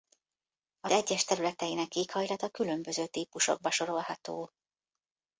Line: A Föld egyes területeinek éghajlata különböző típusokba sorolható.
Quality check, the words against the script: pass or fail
fail